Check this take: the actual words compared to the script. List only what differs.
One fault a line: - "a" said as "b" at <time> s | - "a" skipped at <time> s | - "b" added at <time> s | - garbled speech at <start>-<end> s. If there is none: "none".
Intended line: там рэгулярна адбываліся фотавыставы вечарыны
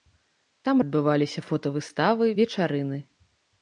- "рэгулярна" skipped at 0.8 s